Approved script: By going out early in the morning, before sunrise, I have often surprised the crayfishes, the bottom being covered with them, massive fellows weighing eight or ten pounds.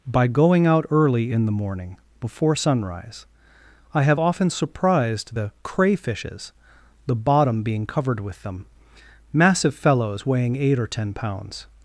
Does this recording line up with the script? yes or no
yes